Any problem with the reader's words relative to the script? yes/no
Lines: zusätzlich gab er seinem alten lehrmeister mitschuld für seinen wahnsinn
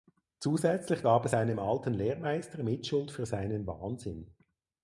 no